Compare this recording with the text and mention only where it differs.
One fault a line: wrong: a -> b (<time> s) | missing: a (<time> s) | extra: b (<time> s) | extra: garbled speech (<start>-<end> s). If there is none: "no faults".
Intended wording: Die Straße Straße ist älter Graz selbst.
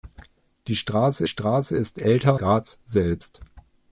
no faults